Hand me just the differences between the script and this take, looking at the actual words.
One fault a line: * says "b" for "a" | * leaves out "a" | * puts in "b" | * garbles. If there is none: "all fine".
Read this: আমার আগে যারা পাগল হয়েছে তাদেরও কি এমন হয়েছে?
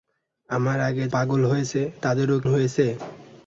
* leaves out "যারা"
* leaves out "কি এমন"